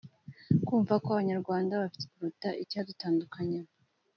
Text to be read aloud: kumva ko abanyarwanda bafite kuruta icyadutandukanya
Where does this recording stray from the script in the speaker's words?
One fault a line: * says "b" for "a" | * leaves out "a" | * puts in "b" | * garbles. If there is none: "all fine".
all fine